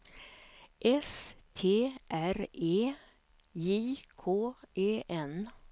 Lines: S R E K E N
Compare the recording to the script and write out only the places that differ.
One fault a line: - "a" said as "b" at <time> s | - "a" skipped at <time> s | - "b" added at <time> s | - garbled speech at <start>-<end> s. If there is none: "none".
- "T" added at 1.5 s
- "J" added at 3.5 s